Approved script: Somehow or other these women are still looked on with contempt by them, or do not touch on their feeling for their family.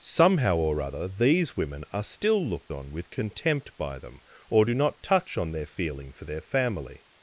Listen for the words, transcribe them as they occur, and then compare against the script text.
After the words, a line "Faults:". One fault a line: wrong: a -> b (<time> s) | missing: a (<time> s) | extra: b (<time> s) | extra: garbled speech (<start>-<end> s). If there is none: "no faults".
Somehow or other these women are still looked on with contempt by them, or do not touch on their feeling for their family.
Faults:
no faults